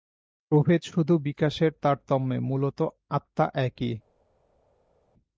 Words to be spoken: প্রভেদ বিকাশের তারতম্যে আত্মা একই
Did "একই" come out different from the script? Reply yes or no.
no